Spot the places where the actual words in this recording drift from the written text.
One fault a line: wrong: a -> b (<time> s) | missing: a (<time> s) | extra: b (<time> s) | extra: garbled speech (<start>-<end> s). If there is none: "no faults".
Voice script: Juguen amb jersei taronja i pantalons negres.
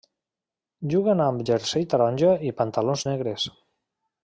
no faults